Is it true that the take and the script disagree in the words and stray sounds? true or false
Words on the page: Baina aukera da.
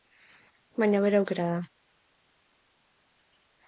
true